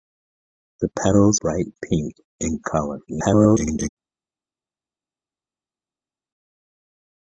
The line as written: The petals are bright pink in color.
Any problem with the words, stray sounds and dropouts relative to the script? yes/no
yes